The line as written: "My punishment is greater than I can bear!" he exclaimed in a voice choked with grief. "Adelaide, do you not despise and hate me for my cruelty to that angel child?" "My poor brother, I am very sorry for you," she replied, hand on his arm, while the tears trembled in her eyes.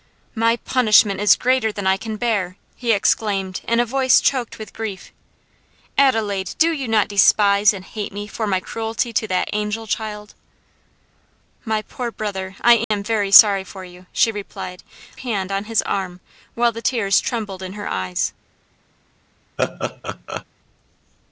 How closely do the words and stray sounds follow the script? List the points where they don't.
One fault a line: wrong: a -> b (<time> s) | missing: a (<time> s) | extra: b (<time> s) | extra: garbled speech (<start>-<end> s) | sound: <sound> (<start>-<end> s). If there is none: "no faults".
sound: dropout (12.8-12.9 s)
sound: laugh (19.6-20.4 s)